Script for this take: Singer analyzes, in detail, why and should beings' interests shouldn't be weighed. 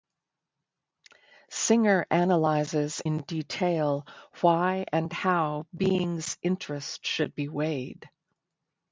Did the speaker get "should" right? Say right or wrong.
wrong